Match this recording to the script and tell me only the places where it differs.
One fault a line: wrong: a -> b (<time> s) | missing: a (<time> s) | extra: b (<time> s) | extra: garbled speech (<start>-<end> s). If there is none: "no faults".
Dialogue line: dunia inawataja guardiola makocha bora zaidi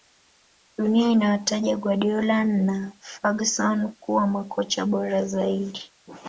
extra: na ferguson kuwa (2.4 s)